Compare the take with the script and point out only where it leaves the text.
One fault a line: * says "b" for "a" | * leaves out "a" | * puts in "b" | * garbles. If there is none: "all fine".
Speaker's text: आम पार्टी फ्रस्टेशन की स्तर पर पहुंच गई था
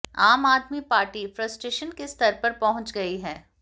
* puts in "आदमी"
* says "के" for "की"
* says "है" for "था"